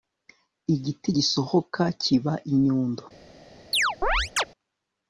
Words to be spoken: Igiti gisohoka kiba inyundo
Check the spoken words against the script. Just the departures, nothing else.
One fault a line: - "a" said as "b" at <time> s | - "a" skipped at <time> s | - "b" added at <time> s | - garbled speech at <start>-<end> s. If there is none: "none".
none